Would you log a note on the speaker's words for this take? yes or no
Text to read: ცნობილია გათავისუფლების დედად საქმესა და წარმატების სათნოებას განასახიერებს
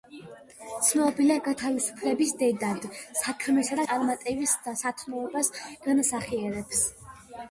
no